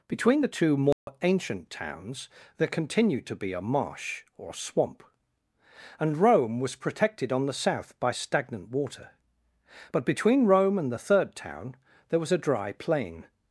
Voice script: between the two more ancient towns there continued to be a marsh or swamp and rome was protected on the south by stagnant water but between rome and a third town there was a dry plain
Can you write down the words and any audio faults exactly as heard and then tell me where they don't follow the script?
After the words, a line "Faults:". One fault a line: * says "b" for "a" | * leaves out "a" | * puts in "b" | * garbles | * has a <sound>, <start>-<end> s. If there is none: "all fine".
between the two more ancient towns there continued to be a marsh or swamp and rome was protected on the south by stagnant water but between rome and the third town there was a dry plain
Faults:
* has a dropout, 0.9-1.1 s
* says "the" for "a"